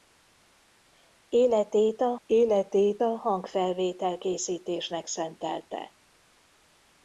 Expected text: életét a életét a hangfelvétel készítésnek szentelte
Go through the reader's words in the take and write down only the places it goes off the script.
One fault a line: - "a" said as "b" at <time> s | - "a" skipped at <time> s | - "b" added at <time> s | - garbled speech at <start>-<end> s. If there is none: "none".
none